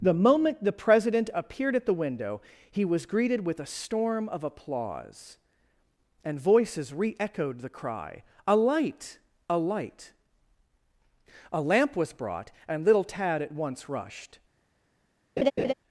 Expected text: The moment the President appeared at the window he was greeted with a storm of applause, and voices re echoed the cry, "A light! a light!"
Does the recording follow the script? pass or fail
fail